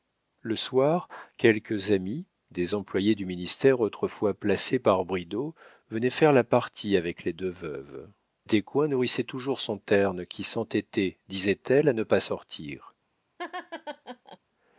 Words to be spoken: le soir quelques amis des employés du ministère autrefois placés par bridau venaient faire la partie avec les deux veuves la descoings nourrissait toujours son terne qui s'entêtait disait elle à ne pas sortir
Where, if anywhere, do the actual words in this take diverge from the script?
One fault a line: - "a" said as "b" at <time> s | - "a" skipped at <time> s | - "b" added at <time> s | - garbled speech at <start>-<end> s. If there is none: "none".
- "la" skipped at 8.1 s